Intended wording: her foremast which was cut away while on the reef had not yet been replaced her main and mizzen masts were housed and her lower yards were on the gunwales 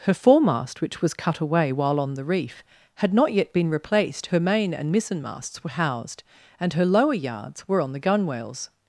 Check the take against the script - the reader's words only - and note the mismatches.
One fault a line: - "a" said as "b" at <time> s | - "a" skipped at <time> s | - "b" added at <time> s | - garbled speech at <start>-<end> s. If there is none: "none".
none